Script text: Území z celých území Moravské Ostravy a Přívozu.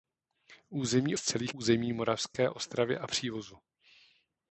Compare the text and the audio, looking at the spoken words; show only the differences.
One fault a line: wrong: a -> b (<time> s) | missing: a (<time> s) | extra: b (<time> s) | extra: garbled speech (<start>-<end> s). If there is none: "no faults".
no faults